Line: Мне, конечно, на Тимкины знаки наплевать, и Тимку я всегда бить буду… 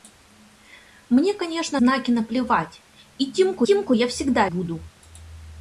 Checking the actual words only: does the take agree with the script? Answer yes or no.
no